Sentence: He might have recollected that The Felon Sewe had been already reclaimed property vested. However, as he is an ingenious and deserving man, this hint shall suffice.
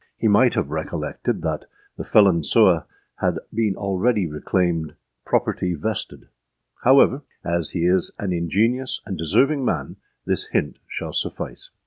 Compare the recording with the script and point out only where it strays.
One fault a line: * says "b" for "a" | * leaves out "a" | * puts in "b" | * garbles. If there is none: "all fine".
all fine